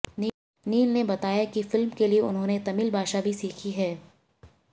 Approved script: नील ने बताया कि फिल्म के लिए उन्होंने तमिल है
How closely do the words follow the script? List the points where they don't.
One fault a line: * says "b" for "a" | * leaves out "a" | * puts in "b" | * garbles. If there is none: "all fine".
* puts in "भाषा भी सीखी"